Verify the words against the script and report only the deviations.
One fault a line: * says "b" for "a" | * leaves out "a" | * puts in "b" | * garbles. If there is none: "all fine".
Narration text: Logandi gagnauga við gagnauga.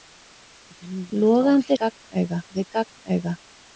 all fine